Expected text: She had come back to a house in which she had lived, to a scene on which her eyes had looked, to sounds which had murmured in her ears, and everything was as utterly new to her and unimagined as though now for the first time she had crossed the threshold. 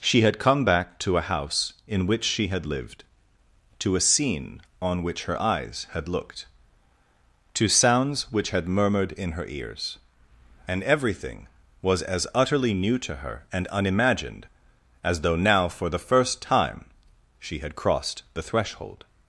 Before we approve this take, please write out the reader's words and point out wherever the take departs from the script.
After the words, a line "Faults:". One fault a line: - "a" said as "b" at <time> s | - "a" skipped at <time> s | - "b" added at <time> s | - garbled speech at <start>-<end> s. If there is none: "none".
She had come back to a house in which she had lived, to a scene on which her eyes had looked, to sounds which had murmured in her ears, and everything was as utterly new to her and unimagined as though now for the first time she had crossed the threshold.
Faults:
none